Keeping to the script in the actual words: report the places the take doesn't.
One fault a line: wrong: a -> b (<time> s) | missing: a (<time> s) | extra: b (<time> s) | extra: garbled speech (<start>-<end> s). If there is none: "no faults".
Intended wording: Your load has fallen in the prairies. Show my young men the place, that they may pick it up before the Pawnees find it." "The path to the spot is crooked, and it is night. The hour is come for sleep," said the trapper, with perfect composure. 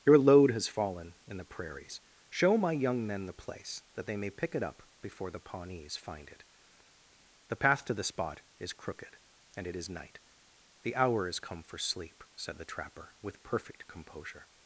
no faults